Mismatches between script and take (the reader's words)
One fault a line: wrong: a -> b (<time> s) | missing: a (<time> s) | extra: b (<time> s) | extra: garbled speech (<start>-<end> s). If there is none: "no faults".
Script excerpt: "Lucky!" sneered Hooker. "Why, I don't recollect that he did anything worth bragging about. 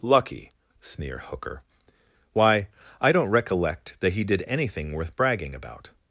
wrong: sneered -> sneer (0.8 s)